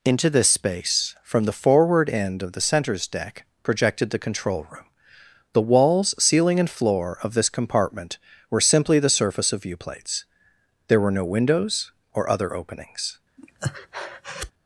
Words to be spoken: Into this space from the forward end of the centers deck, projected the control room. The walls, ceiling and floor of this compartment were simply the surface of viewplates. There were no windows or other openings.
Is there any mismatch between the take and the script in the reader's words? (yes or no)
no